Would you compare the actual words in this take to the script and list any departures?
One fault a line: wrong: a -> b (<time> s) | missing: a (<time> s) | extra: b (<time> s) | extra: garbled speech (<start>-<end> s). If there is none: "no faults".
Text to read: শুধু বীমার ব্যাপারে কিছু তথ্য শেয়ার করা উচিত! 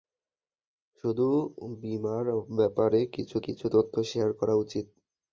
extra: কিছু (3.4 s)